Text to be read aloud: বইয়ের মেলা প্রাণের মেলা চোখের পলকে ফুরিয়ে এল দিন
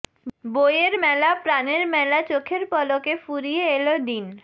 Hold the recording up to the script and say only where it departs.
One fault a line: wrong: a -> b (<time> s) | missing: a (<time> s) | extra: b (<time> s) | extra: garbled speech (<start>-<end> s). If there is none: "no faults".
no faults